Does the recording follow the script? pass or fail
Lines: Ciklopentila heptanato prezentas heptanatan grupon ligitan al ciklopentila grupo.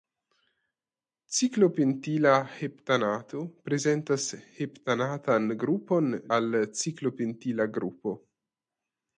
fail